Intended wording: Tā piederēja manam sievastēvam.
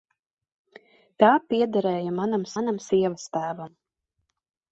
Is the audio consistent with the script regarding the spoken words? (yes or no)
no